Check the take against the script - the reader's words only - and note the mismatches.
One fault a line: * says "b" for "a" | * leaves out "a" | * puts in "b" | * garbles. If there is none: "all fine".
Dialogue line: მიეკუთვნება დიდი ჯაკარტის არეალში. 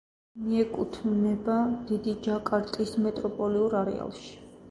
* puts in "მეტროპოლიურ"